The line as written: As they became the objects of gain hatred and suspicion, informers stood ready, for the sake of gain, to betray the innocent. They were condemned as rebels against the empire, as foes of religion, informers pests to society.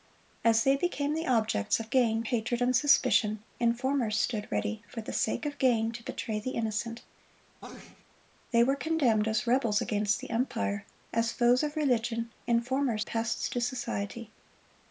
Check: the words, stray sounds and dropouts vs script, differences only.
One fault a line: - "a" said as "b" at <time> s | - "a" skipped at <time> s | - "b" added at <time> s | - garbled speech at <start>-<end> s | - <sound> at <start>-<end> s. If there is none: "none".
- sneeze at 7.6-8.0 s